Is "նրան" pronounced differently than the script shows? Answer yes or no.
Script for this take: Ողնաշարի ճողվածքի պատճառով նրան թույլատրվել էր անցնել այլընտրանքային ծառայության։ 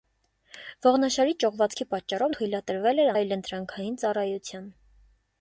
yes